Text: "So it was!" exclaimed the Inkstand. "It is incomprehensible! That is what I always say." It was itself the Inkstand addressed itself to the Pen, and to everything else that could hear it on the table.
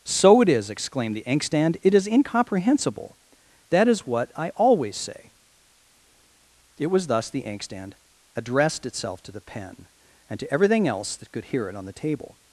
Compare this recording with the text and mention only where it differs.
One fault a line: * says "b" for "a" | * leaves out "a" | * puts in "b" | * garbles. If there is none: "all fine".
* says "is" for "was"
* says "thus" for "itself"